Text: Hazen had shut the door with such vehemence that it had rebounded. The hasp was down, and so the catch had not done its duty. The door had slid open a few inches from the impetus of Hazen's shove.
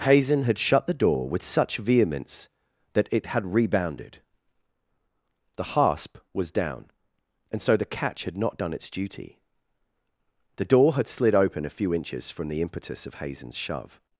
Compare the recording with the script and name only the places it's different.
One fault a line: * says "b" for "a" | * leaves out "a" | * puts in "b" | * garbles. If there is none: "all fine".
all fine